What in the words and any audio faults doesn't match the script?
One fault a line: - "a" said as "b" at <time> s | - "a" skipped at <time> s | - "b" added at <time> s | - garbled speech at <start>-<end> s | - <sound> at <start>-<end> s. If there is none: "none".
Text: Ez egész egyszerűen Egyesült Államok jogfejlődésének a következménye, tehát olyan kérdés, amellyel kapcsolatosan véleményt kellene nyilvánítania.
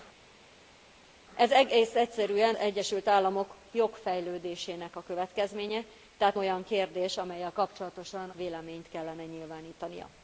none